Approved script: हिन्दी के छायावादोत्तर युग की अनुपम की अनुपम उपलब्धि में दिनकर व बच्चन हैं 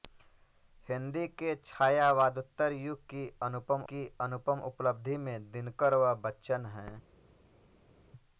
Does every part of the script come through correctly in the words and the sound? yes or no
yes